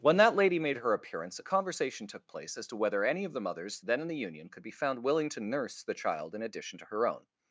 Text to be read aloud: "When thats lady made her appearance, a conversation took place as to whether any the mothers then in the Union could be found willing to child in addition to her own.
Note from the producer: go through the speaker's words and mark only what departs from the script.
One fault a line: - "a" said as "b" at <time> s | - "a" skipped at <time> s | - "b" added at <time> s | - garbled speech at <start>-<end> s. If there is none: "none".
- "thats" said as "that" at 0.2 s
- "of" added at 3.2 s
- "nurse the" added at 5.4 s